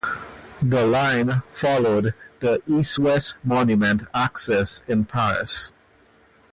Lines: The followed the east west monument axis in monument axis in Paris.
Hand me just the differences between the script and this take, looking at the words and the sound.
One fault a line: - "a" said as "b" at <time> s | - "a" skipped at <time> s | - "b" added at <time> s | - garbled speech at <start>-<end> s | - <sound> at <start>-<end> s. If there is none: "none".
- "line" added at 0.8 s
- "monument axis in" skipped at 5.0 s